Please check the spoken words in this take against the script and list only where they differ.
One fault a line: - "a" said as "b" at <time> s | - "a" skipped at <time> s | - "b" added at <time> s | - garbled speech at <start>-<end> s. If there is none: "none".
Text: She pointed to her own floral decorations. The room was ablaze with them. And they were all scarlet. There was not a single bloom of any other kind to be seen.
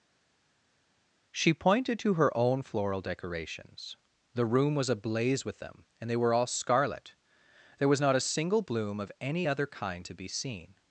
none